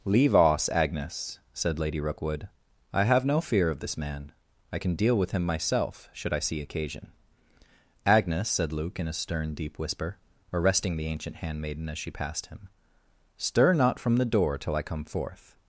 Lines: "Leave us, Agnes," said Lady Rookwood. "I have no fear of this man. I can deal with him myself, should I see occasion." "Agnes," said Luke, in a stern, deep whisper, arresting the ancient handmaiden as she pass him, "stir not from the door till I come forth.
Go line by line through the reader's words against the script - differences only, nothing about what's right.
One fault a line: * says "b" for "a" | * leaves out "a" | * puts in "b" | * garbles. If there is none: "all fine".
* says "passed" for "pass"